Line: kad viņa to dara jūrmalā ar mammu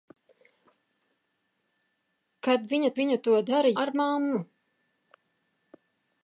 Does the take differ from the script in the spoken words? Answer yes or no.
yes